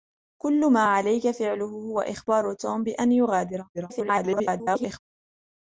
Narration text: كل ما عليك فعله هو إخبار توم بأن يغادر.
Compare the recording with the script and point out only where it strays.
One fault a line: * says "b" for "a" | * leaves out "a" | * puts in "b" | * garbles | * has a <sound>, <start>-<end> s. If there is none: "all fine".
* garbles